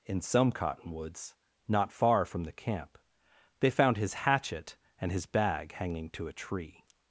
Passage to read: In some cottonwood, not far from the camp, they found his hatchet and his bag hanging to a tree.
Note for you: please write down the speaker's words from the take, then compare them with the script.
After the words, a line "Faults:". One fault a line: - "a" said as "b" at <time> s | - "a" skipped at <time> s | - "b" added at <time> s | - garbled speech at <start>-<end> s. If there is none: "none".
In some cottonwoods, not far from the camp, they found his hatchet and his bag hanging to a tree.
Faults:
- "cottonwood" said as "cottonwoods" at 0.5 s